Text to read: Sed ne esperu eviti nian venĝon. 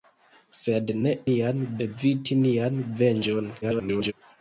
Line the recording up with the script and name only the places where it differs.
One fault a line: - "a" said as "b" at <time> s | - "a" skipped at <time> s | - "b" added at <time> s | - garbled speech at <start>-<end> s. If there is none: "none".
- "esperu" said as "nian" at 1.3 s
- garbled speech at 3.6-4.1 s